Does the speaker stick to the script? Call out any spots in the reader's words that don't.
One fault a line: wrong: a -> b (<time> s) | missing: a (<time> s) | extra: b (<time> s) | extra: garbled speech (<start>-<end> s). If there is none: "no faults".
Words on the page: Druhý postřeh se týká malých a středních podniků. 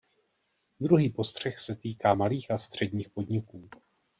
no faults